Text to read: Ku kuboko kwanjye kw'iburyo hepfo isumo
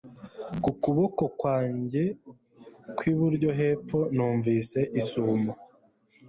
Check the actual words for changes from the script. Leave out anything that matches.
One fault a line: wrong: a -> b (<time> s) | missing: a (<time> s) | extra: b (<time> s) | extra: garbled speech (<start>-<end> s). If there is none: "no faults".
extra: numvise (4.1 s)